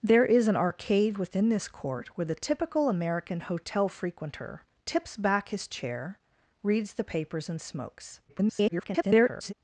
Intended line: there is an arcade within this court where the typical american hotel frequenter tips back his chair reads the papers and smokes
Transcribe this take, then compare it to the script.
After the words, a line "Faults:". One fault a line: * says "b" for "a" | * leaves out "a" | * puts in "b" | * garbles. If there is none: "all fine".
there is an arcade within this court where the typical american hotel frequenter tips back his chair reads the papers and smokes [garbled]
Faults:
* garbles